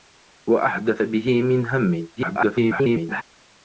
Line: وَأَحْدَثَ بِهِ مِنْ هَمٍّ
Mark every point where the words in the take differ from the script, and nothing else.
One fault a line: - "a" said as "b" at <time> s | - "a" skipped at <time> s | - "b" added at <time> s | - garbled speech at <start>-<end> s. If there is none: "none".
- garbled speech at 2.2-3.2 s